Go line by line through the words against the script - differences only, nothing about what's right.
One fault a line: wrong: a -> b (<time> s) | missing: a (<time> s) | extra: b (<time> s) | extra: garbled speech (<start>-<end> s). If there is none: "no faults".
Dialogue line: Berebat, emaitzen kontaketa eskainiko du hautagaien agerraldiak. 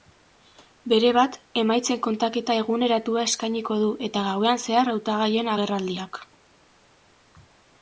extra: eguneratua (2.6 s)
extra: eta gauean zehar (4.1 s)